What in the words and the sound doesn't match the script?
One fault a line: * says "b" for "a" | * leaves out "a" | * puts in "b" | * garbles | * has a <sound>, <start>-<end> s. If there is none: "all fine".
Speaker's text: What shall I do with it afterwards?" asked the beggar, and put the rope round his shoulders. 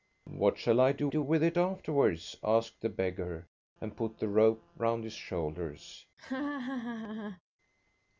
* puts in "do"
* has a laugh, 6.2-7.4 s